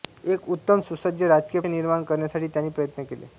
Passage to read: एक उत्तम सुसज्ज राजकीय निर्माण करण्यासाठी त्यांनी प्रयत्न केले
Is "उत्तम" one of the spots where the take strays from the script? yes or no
no